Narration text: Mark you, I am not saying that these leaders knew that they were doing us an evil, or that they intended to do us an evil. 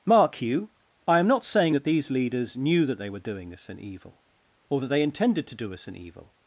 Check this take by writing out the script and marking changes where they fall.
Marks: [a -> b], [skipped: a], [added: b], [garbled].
Mark you, I am not saying that these leaders knew that they were doing us an evil, or that they intended to do us an evil.